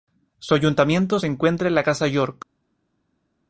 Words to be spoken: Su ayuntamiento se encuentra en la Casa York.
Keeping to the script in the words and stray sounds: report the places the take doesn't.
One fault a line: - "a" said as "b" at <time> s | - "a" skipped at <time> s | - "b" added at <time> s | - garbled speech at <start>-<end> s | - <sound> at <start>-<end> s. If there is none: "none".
none